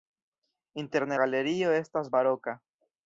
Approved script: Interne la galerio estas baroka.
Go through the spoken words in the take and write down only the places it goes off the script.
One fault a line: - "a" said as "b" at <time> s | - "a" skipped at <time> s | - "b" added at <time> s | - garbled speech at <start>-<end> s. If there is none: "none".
- "la" skipped at 1.2 s